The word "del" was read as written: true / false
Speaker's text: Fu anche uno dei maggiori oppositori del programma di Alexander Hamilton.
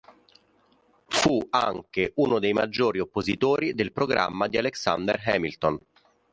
true